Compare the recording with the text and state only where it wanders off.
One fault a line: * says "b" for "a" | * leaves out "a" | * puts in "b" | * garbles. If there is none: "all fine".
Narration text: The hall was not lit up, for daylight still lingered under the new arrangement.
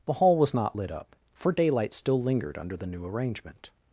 all fine